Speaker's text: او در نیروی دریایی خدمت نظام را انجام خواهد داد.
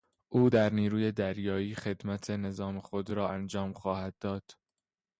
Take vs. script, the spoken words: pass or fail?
fail